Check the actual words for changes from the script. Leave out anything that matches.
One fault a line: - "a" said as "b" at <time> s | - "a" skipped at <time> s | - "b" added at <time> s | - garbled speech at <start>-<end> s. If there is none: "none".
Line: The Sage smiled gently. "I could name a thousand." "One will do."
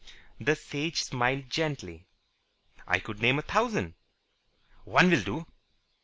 none